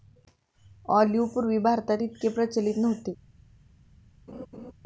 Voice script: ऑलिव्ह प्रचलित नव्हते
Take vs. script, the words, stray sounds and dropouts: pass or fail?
fail